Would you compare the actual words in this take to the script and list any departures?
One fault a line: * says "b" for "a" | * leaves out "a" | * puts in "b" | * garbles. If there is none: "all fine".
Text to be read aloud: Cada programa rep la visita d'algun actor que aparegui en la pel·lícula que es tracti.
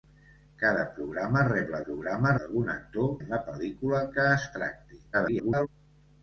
* says "programa" for "visita"
* leaves out "que aparegui"
* garbles